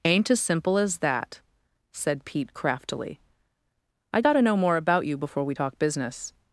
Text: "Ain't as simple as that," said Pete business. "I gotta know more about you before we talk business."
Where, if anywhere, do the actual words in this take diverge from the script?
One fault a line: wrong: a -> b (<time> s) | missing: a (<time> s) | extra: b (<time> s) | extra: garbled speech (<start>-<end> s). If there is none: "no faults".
wrong: business -> craftily (2.5 s)